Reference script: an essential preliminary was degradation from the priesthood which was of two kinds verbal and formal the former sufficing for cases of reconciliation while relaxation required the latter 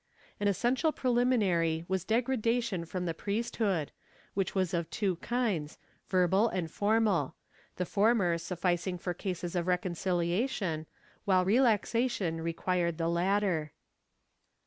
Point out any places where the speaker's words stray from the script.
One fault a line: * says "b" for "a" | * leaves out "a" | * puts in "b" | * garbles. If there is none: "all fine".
all fine